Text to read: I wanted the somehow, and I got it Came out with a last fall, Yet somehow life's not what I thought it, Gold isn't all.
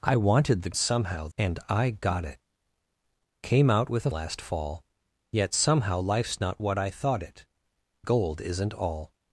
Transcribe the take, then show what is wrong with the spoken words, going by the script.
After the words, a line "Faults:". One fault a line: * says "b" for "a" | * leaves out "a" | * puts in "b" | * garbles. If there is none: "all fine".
I wanted the somehow, and I got it Came out with a last fall, Yet somehow life's not what I thought it, Gold isn't all.
Faults:
all fine